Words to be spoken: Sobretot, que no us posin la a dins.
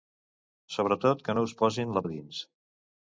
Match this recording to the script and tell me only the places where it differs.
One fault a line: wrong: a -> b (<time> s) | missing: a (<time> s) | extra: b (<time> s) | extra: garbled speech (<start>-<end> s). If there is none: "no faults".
no faults